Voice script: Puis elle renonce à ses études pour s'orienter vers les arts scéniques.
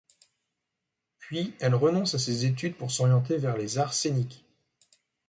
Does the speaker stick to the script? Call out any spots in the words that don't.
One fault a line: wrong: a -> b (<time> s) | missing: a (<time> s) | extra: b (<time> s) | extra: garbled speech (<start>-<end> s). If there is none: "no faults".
no faults